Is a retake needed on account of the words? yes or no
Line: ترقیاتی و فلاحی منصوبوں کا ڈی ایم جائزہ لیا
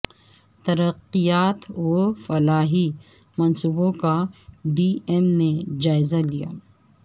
yes